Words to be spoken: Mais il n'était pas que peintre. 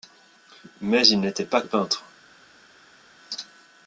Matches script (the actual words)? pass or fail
fail